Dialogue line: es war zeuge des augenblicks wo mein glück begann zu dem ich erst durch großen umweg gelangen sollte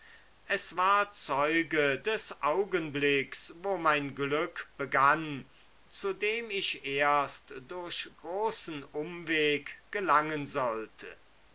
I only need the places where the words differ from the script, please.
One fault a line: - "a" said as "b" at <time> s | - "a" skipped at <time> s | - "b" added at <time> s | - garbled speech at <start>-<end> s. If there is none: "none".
none